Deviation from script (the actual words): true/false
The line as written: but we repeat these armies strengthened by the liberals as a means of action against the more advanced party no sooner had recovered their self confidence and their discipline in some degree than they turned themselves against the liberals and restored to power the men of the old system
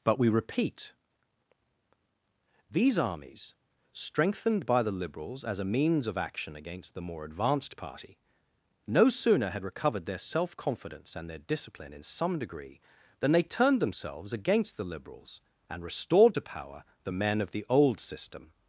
false